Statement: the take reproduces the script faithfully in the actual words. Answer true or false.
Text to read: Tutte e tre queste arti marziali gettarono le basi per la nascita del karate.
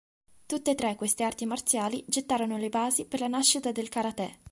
true